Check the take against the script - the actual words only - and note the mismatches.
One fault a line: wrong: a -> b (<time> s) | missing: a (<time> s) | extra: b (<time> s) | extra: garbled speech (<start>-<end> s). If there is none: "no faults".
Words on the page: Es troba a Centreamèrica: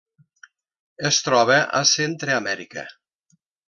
no faults